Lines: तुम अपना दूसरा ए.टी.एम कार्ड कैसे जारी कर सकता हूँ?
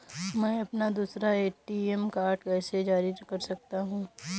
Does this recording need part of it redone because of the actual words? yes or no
yes